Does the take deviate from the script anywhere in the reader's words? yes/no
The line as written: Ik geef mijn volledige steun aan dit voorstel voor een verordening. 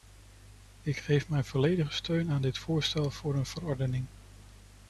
no